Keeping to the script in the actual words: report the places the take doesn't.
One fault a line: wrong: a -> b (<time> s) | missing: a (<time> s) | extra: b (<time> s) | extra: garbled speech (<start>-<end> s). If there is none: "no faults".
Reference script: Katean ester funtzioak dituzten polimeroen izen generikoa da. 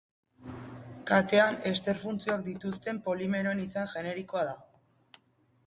no faults